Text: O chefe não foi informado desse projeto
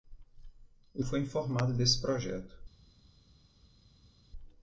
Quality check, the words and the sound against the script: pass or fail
fail